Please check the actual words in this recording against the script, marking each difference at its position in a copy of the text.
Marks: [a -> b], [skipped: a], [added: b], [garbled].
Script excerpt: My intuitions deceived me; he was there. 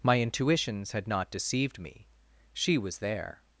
My intuitions [added: had not] deceived me; [he -> she] was there.